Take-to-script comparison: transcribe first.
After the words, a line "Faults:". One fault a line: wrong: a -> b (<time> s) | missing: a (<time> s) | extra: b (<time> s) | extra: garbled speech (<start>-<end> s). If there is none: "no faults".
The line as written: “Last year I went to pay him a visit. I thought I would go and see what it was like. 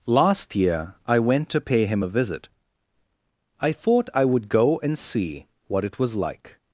“Last year I went to pay him a visit. I thought I would go and see what it was like.
Faults:
no faults